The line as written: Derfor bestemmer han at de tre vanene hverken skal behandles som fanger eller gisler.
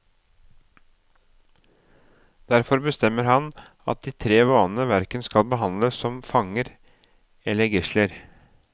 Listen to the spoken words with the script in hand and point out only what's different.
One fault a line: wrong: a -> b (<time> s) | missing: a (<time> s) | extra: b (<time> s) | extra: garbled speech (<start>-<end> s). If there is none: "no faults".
no faults